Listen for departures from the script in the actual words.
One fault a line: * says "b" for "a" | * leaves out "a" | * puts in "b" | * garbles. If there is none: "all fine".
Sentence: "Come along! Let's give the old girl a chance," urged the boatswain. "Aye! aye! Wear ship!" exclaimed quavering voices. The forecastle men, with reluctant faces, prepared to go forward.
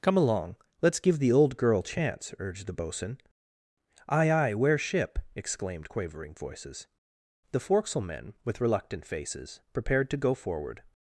* leaves out "a"